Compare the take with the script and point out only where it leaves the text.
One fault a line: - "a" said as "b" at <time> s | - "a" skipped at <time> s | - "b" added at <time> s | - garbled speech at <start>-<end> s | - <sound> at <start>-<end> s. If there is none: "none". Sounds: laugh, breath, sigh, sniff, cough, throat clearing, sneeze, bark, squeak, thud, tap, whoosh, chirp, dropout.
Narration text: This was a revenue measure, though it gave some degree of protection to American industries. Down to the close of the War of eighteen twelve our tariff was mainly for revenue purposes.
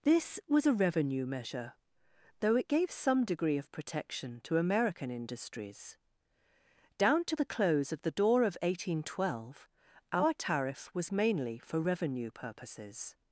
- "War" said as "Door" at 8.1 s